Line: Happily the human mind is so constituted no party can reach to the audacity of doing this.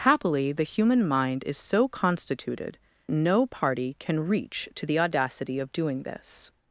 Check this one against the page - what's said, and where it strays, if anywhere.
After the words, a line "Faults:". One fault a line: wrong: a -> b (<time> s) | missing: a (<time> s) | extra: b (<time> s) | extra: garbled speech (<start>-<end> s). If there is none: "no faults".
Happily the human mind is so constituted no party can reach to the audacity of doing this.
Faults:
no faults